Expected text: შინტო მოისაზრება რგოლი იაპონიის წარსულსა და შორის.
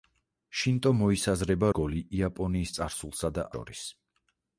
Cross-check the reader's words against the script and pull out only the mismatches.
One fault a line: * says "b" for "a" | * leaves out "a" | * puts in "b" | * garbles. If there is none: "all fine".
all fine